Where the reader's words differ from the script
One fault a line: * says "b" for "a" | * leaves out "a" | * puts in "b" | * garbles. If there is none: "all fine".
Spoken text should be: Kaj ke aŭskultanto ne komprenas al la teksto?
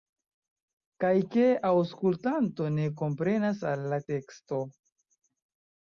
all fine